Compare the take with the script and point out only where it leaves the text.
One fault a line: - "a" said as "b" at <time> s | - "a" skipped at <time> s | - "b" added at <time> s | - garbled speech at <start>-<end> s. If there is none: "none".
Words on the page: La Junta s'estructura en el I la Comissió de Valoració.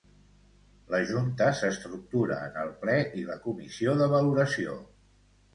- "Ple" added at 2.8 s